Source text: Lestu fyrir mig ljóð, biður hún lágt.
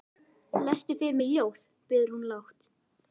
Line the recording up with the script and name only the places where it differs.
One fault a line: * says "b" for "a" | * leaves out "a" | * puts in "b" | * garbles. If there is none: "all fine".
all fine